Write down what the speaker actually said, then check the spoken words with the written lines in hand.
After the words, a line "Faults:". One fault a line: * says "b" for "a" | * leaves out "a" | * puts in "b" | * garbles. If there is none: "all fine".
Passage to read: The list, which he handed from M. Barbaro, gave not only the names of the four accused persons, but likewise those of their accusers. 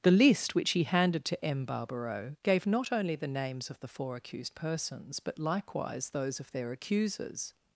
The list, which he handed to M. Barbaro, gave not only the names of the four accused persons, but likewise those of their accusers.
Faults:
* says "to" for "from"